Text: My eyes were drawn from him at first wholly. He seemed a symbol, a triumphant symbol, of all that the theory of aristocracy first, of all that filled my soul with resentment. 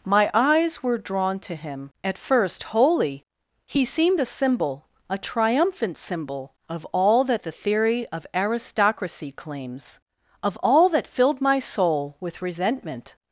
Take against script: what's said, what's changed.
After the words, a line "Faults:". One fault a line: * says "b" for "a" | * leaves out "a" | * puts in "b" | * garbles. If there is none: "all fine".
My eyes were drawn to him at first wholly. He seemed a symbol, a triumphant symbol, of all that the theory of aristocracy claims, of all that filled my soul with resentment.
Faults:
* says "to" for "from"
* says "claims" for "first"